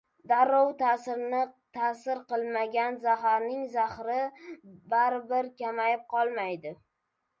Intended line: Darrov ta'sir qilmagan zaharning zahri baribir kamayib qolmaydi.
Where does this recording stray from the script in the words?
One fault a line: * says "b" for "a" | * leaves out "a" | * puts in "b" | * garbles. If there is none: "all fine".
all fine